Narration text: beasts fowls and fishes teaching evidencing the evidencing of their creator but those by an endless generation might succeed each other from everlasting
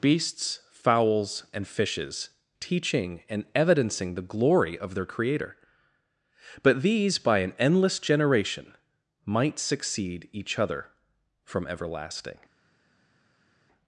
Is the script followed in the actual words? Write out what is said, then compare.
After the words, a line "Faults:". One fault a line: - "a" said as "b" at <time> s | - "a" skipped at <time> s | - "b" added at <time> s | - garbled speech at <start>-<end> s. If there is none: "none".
beasts fowls and fishes teaching and evidencing the glory of their creator but these by an endless generation might succeed each other from everlasting
Faults:
- "and" added at 3.3 s
- "evidencing" said as "glory" at 4.2 s
- "those" said as "these" at 6.8 s